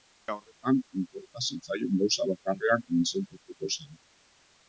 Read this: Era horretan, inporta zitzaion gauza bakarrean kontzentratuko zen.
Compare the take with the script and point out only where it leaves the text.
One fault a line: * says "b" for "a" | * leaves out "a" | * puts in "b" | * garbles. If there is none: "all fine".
all fine